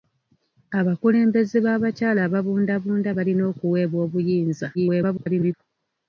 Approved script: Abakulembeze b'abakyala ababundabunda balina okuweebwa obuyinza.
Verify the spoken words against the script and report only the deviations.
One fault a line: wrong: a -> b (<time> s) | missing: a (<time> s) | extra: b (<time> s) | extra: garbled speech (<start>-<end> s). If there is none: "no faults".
extra: garbled speech (4.7-5.5 s)